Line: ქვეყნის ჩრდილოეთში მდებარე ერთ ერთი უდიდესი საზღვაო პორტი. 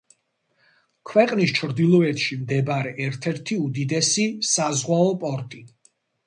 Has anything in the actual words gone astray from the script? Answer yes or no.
no